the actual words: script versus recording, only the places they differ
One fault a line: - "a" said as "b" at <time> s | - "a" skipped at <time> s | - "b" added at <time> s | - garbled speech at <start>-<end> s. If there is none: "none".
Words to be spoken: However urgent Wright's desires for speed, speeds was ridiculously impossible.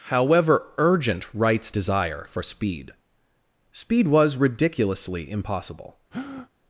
- "desires" said as "desire" at 1.7 s
- "speeds" said as "speed" at 3.7 s